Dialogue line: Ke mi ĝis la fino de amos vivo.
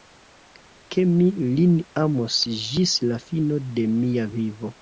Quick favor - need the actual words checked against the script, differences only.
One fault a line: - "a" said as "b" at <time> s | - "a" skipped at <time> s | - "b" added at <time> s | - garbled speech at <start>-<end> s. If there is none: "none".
- "lin amos" added at 1.6 s
- "amos" said as "mia" at 4.0 s